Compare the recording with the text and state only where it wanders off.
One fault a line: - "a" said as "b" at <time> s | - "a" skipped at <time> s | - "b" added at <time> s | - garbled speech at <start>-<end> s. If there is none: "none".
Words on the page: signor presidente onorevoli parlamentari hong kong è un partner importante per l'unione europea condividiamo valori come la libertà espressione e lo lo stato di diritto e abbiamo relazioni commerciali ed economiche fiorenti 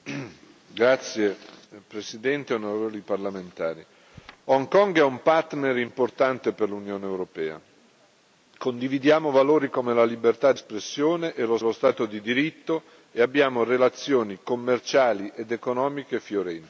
none